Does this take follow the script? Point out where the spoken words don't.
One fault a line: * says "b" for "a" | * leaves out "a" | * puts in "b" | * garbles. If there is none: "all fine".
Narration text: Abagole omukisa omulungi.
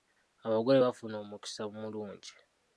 * puts in "bafuna"